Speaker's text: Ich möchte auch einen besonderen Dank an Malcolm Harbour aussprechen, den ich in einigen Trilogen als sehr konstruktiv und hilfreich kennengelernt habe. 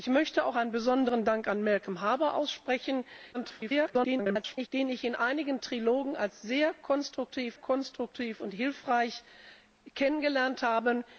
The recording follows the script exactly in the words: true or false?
false